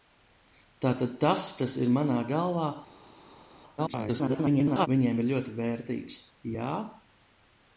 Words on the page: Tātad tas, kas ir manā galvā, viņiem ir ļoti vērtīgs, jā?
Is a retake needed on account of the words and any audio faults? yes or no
yes